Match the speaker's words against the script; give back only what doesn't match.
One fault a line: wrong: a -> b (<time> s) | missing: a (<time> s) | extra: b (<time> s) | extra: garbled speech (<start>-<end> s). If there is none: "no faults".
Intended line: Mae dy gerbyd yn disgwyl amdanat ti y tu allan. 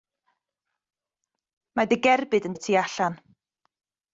missing: disgwyl amdanat ti (2.6 s)